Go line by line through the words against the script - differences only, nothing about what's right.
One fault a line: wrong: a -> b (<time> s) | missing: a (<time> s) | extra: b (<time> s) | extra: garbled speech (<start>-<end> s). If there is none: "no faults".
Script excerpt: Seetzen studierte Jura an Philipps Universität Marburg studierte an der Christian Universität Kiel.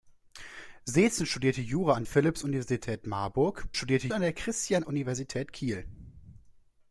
no faults